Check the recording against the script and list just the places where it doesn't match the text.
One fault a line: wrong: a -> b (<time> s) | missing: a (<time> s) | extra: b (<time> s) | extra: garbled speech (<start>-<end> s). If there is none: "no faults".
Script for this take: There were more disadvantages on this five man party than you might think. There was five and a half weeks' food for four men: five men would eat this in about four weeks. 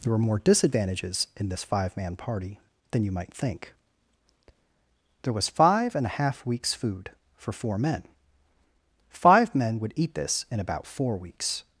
wrong: on -> in (1.4 s)